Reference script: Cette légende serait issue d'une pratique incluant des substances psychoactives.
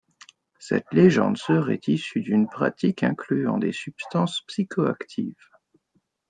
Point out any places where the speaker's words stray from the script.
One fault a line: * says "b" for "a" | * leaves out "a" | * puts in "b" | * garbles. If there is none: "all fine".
all fine